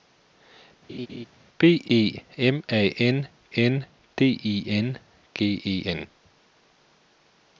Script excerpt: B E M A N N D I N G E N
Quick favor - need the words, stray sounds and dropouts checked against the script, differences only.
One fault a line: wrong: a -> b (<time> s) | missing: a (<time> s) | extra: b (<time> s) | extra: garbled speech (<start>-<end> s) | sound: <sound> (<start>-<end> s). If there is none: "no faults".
sound: laugh (0.9-1.3 s)